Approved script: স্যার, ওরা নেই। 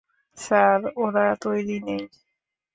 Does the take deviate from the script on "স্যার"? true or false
false